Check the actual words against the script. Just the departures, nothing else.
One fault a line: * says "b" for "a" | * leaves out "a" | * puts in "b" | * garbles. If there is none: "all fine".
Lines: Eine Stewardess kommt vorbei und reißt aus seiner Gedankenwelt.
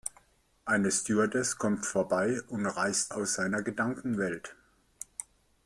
all fine